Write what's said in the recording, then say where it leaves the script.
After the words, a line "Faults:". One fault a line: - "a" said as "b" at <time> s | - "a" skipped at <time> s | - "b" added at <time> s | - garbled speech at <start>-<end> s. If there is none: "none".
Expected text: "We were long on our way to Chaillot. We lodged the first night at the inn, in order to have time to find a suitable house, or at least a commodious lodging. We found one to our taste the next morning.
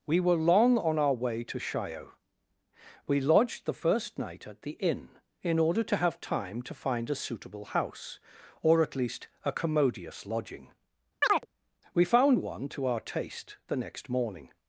"We were long on our way to Chaillot. We lodged the first night at the inn, in order to have time to find a suitable house, or at least a commodious lodging. We found one to our taste the next morning.
Faults:
none